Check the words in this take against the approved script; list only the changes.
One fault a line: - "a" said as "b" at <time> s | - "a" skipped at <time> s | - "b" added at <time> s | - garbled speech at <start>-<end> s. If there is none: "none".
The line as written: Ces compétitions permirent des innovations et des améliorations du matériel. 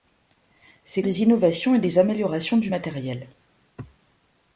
- "compétitions permirent" skipped at 1.1 s